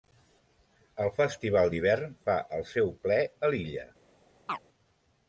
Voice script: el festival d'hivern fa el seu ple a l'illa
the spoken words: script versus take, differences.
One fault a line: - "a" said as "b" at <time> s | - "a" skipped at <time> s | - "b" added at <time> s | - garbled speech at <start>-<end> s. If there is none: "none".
none